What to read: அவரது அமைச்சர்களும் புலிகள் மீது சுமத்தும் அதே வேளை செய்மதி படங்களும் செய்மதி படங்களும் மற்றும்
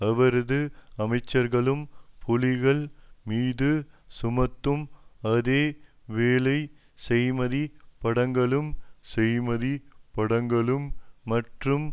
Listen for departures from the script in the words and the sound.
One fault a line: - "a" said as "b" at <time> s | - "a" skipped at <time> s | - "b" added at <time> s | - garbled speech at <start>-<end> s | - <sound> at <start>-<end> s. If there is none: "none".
none